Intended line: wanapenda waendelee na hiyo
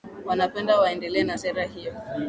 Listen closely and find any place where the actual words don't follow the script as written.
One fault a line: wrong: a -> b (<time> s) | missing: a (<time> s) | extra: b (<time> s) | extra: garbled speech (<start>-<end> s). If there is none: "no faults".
extra: sera (1.3 s)